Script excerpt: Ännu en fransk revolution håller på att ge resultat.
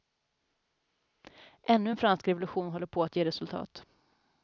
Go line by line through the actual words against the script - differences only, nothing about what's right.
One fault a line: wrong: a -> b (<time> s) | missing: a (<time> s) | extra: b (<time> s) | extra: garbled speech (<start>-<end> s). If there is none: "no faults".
no faults